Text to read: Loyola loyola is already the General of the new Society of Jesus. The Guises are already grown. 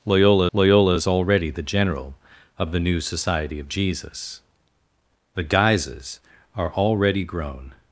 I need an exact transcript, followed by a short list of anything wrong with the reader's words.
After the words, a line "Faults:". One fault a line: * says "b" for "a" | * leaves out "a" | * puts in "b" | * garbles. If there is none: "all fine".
Loyola loyola is already the General of the new Society of Jesus. The Guises are already grown.
Faults:
all fine